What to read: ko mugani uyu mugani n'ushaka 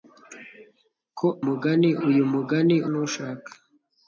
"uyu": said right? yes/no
yes